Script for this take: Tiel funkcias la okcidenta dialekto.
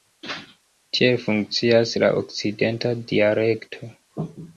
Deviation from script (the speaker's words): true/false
false